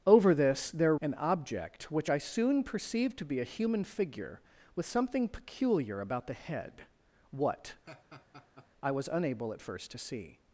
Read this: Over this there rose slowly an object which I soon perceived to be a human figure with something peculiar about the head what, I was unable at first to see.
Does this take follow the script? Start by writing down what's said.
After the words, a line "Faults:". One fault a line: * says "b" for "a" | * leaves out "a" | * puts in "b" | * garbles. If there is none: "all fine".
Over this there an object which I soon perceived to be a human figure with something peculiar about the head what, I was unable at first to see.
Faults:
* leaves out "rose slowly"